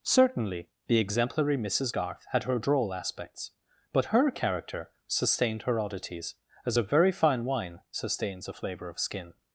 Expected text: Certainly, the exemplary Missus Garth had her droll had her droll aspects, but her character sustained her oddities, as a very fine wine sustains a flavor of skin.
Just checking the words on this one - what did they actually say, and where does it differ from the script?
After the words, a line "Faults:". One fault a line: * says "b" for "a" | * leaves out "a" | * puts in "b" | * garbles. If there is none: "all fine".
Certainly, the exemplary Missus Garth had her droll aspects, but her character sustained her oddities, as a very fine wine sustains a flavor of skin.
Faults:
* leaves out "had her droll"